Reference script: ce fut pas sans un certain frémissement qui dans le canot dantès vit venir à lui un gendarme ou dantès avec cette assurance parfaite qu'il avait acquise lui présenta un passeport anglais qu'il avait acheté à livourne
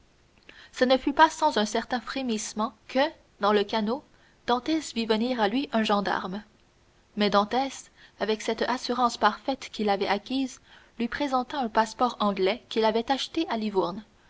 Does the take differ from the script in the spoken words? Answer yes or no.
yes